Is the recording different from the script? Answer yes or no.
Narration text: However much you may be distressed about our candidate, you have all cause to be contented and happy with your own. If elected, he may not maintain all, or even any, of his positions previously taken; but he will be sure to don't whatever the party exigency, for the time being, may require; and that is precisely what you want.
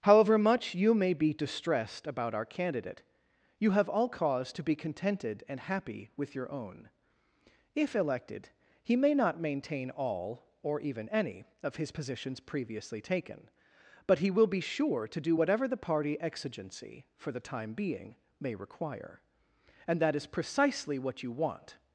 yes